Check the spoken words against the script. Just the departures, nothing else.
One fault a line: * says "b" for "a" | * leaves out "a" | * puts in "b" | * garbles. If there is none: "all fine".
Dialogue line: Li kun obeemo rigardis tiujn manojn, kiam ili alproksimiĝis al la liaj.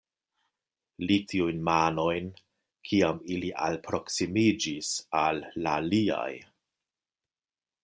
* leaves out "kun obeemo rigardis"